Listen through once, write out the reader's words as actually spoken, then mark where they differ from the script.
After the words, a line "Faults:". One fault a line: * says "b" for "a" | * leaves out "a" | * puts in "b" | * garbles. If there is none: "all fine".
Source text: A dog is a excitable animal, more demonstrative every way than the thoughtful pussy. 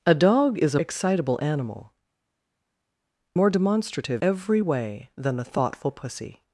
A dog is a excitable animal, more demonstrative every way than the thoughtful pussy.
Faults:
all fine